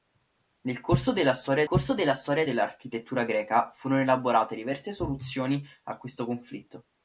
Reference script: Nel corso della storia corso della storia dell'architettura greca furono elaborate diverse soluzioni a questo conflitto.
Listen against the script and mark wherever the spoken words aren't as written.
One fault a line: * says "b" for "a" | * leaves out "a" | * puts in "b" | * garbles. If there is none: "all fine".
all fine